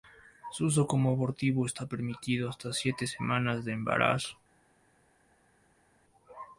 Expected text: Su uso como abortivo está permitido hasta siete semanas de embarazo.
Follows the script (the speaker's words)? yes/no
yes